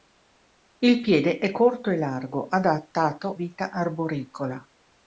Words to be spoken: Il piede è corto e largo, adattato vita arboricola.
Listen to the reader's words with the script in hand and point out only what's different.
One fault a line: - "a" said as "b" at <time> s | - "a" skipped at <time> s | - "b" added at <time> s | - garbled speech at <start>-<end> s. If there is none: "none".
none